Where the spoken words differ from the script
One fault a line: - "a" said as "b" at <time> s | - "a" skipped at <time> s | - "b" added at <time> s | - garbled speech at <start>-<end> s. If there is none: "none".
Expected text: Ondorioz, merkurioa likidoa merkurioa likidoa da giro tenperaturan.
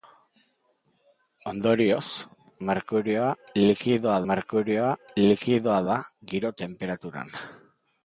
none